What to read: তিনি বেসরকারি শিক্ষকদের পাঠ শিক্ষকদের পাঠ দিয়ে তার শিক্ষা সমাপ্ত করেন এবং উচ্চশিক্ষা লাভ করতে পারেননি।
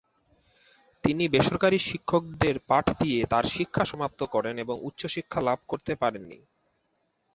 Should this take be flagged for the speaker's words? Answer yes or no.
yes